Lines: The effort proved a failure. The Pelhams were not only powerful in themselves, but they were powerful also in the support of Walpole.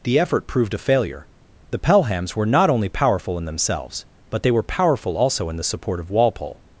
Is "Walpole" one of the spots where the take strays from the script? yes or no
no